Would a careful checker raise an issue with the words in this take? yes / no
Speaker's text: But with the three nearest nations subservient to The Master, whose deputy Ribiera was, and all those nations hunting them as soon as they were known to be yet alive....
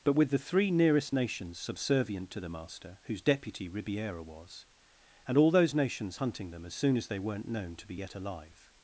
yes